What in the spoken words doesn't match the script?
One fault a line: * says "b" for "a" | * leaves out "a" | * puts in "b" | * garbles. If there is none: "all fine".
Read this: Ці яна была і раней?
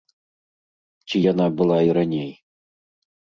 all fine